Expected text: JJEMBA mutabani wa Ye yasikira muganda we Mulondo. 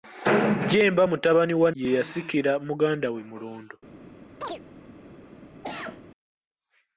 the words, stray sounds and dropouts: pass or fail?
fail